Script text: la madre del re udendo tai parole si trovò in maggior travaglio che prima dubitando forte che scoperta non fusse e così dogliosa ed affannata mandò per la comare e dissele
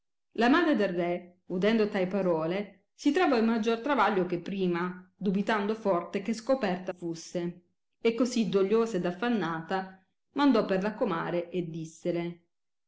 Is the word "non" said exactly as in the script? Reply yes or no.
no